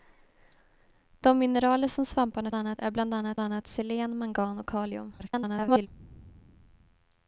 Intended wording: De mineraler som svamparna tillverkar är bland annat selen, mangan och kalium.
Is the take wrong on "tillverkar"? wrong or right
wrong